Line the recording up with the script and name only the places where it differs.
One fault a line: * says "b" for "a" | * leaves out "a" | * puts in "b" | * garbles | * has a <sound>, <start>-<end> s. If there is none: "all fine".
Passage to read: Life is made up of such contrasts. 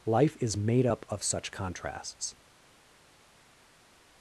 all fine